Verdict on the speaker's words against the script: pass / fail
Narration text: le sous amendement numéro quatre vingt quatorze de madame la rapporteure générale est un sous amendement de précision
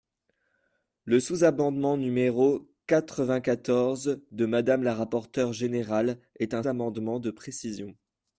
fail